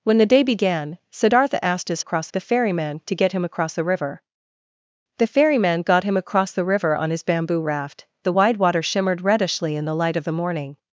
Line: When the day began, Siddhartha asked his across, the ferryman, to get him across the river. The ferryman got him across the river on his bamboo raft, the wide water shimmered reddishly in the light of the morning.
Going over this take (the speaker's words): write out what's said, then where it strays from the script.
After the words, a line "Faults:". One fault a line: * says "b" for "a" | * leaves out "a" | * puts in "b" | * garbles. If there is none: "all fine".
When the day began, Siddhartha asked his across, the ferryman, to get him across the river. The ferryman got him across the river on his bamboo raft, the wide water shimmered reddishly in the light of the morning.
Faults:
all fine